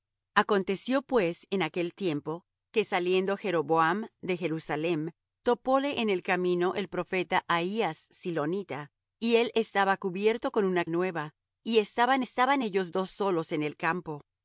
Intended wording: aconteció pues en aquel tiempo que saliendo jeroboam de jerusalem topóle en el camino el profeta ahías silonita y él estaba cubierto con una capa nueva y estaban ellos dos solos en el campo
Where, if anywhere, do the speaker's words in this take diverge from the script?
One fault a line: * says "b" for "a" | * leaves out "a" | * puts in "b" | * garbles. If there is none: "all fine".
* leaves out "capa"
* puts in "estaban"